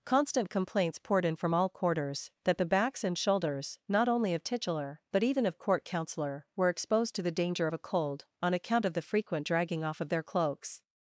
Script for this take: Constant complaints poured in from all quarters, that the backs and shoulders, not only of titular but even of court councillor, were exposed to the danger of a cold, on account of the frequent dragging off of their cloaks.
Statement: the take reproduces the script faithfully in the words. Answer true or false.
true